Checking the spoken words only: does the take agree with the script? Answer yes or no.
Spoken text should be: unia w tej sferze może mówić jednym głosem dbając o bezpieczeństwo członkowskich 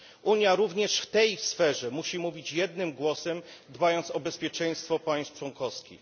no